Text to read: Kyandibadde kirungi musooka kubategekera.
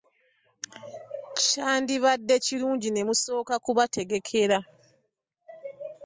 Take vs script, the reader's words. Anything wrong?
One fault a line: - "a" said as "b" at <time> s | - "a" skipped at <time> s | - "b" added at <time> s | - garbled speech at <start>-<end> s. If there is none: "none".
- "ne" added at 2.9 s